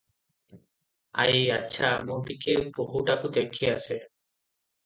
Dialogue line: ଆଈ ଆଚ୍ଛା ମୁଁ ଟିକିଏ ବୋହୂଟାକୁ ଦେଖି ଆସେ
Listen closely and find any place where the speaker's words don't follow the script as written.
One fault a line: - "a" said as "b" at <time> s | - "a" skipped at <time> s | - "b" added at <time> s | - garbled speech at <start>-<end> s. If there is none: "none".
none